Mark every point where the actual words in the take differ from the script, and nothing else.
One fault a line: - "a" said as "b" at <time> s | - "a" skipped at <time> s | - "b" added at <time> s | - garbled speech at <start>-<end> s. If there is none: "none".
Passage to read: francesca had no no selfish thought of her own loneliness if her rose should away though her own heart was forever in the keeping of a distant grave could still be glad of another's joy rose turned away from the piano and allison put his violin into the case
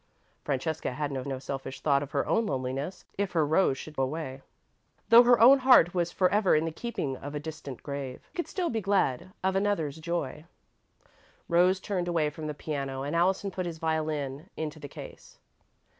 none